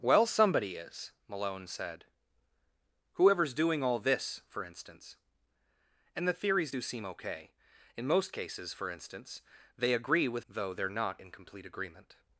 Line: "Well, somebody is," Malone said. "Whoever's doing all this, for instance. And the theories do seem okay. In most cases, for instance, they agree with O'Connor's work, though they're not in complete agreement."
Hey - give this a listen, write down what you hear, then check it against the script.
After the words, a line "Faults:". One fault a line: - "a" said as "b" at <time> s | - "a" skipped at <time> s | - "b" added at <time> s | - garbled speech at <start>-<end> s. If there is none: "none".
"Well, somebody is," Malone said. "Whoever's doing all this, for instance. And the theories do seem okay. In most cases, for instance, they agree with Though they're not in complete agreement."
Faults:
- "O'Connor's work" skipped at 10.5 s